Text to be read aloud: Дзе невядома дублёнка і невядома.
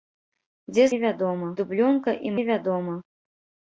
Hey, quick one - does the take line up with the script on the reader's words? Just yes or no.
yes